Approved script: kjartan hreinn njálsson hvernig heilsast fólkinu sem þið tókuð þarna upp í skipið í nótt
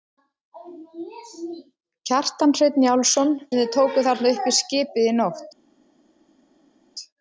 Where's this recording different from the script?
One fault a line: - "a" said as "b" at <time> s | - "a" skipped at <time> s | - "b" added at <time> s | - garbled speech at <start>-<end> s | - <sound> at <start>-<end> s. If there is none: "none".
- "hvernig heilsast fólkinu" skipped at 3.4 s